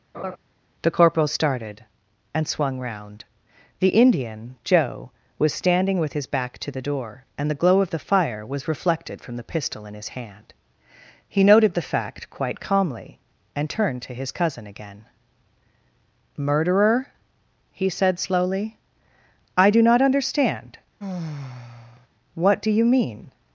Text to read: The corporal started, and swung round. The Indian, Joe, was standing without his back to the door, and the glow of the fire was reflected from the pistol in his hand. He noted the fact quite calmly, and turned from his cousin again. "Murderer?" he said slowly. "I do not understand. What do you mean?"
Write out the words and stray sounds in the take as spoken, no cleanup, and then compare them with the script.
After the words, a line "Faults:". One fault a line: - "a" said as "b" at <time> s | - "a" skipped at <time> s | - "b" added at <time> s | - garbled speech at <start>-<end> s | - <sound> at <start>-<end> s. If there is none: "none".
The corporal started, and swung round. The Indian, Joe, was standing with his back to the door, and the glow of the fire was reflected from the pistol in his hand. He noted the fact quite calmly, and turned to his cousin again. "Murderer?" he said slowly. "I do not understand. What do you mean?"
Faults:
- laugh at 0.1-0.4 s
- "without" said as "with" at 6.0 s
- "from" said as "to" at 14.0 s
- sigh at 21.0-22.1 s